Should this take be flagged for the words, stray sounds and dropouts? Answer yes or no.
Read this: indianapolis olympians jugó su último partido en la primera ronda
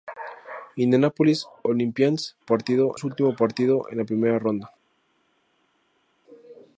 yes